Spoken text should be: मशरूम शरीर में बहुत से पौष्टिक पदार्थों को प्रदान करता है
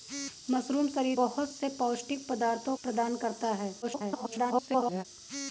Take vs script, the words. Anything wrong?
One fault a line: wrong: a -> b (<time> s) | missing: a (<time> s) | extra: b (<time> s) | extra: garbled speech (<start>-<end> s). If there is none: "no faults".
missing: में (1.2 s)
missing: को (2.8 s)
extra: garbled speech (3.8-5.0 s)